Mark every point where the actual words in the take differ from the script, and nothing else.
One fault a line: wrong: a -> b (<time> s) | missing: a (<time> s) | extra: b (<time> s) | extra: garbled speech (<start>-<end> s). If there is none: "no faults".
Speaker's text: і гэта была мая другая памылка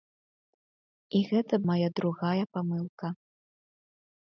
missing: была (1.6 s)